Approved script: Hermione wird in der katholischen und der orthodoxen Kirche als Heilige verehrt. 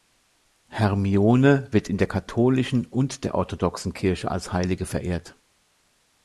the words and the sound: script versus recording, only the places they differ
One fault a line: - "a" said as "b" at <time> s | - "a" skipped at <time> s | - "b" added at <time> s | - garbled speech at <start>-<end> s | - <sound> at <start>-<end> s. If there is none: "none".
none